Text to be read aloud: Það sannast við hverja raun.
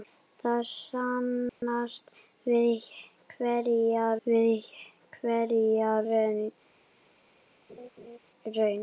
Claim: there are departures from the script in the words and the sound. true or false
true